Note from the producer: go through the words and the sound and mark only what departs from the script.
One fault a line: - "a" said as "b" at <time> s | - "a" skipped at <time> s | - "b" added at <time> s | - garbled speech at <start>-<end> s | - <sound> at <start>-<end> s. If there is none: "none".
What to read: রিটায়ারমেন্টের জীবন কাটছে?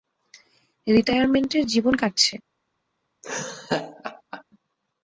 - laugh at 3.2-4.4 s